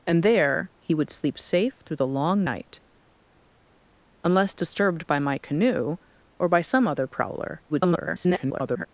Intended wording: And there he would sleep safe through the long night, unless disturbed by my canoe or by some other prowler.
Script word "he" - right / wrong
right